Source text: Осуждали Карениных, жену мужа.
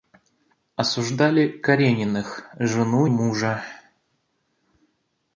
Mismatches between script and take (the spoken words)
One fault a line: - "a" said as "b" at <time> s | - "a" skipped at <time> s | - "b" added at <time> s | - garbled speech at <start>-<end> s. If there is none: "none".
none